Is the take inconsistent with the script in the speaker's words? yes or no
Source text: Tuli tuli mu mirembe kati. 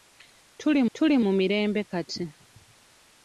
no